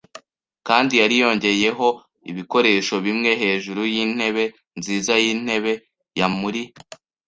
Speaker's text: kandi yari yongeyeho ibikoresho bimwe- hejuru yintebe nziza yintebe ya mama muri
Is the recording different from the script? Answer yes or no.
yes